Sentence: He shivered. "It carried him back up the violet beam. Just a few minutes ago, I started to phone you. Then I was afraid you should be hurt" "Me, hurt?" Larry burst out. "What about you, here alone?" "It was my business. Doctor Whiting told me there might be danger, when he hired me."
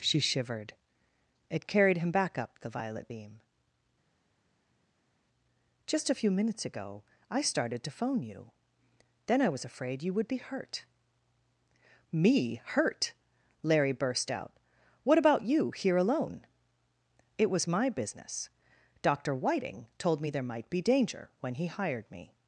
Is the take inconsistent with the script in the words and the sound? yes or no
yes